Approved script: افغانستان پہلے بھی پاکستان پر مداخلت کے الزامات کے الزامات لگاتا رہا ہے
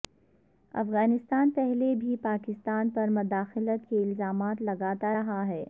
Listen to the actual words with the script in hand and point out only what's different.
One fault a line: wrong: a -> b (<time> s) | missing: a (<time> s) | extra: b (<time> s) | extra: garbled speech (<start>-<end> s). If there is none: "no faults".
missing: کے الزامات (4.6 s)